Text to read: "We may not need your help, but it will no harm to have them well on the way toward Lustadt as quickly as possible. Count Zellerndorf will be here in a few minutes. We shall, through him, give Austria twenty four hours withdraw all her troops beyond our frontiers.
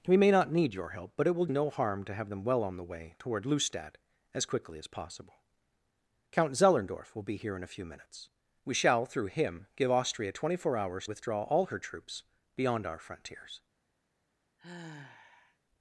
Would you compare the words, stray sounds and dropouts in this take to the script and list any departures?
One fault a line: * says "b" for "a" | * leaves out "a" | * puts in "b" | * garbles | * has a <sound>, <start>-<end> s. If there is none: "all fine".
* has a sigh, 14.6-15.6 s